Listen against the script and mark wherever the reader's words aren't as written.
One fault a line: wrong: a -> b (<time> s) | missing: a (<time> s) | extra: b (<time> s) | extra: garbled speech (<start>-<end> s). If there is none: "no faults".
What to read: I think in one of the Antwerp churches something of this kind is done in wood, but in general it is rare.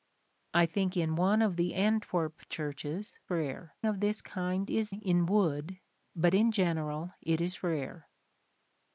wrong: something -> rare (3.3 s)
missing: done (4.9 s)